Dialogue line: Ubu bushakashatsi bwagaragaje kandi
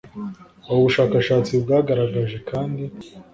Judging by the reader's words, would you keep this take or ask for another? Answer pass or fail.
pass